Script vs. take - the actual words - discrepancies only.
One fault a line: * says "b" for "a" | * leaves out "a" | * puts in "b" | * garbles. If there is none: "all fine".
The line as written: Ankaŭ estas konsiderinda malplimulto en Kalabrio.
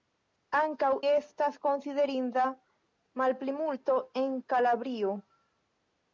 all fine